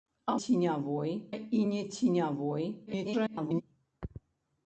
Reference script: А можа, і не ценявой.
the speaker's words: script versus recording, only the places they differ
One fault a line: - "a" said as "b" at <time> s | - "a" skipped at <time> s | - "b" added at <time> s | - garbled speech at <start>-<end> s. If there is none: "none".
- "можа" said as "ценявой" at 0.4 s
- garbled speech at 2.9-3.6 s